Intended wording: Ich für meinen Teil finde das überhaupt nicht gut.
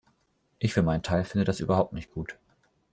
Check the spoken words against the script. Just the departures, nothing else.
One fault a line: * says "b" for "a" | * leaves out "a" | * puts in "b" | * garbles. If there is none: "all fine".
all fine